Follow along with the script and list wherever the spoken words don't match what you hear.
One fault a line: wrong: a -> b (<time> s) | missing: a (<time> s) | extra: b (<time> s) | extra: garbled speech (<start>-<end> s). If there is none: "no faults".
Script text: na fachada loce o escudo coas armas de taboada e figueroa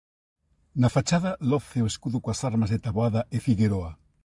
no faults